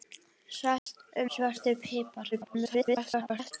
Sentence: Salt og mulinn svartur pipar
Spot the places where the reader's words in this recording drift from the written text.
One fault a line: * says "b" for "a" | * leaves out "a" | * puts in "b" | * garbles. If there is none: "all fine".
* leaves out "mulinn"
* garbles